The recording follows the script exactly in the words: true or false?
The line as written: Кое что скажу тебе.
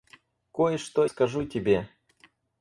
true